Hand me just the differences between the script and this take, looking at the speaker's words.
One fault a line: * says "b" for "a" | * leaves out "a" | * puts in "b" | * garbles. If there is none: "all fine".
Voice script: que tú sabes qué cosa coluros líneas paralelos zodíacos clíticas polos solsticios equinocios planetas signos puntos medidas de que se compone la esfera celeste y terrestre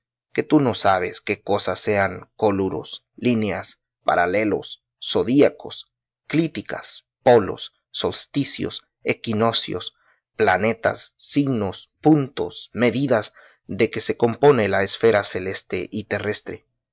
* puts in "no"
* puts in "sean"